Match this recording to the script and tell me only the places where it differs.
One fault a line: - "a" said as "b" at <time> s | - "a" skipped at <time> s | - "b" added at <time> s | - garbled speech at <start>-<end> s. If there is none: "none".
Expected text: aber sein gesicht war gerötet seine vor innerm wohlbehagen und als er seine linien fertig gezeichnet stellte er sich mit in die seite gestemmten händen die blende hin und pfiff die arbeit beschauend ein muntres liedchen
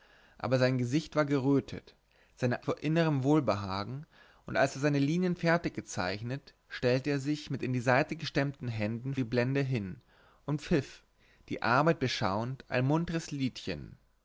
none